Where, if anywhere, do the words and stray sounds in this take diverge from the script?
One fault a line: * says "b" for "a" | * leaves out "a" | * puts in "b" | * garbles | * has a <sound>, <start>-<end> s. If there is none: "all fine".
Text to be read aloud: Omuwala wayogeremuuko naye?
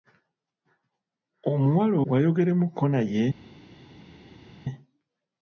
all fine